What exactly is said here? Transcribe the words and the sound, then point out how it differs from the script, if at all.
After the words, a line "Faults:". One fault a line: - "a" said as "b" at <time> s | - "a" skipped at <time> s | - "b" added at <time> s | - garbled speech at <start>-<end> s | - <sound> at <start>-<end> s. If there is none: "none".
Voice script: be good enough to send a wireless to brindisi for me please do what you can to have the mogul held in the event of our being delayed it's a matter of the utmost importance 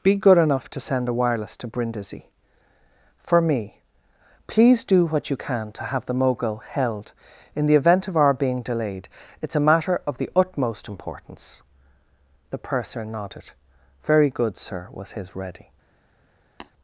be good enough to send a wireless to brindisi for me please do what you can to have the mogul held in the event of our being delayed it's a matter of the utmost importance the purser nodded very good sir was his ready
Faults:
- "the purser nodded very good sir was his ready" added at 12.5 s
- tap at 16.6-16.7 s